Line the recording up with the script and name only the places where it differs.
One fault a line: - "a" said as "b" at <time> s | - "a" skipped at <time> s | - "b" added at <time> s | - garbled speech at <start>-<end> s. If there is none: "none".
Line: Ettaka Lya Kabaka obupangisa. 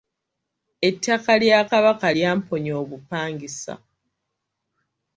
- "lyamponya" added at 2.1 s